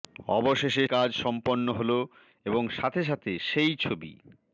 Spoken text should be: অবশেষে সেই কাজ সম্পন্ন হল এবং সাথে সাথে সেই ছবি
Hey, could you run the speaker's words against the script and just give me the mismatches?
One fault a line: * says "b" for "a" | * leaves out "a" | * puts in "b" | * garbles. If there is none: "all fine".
* leaves out "সেই"